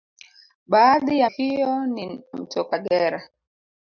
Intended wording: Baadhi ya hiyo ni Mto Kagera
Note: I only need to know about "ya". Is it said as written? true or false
true